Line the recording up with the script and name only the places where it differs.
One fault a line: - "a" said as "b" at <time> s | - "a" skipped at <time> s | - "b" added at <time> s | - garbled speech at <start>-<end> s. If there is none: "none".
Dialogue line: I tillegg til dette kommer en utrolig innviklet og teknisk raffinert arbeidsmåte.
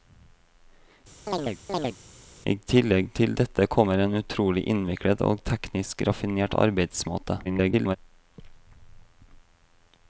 - garbled speech at 7.4-8.0 s